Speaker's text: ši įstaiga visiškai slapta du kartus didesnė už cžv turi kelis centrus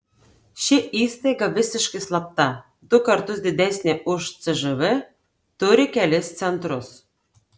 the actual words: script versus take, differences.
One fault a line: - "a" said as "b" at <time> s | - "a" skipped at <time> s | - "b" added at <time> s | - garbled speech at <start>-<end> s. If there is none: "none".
none